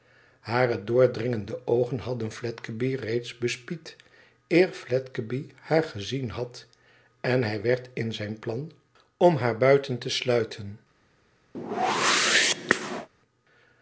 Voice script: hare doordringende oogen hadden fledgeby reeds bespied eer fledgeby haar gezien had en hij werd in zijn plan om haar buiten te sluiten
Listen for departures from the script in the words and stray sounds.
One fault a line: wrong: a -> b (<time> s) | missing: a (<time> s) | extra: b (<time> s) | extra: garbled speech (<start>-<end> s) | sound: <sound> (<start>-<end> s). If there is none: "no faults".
sound: whoosh (11.5-13.1 s)